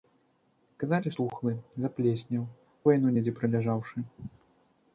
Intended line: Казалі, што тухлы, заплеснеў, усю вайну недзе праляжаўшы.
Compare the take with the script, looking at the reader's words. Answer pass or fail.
fail